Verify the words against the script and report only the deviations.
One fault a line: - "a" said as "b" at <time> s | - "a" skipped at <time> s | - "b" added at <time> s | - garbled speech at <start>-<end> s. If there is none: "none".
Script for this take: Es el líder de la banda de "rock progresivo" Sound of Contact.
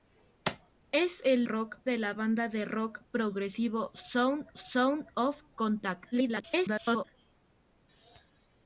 - "líder" said as "rock" at 1.4 s
- "Sound" added at 4.5 s
- garbled speech at 6.1-7.0 s